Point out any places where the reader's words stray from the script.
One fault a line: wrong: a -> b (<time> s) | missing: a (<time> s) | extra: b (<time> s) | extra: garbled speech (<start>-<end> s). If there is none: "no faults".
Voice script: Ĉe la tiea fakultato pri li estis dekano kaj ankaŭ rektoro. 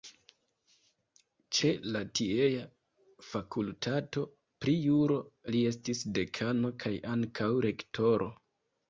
extra: juro (4.8 s)